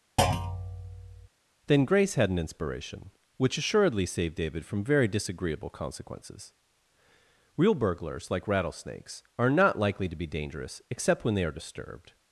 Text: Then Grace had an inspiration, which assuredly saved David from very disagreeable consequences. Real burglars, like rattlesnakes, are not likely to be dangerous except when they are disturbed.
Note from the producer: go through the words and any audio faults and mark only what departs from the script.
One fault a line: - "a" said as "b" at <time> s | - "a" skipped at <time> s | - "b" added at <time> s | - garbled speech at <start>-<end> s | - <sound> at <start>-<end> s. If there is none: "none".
- thud at 0.2-1.3 s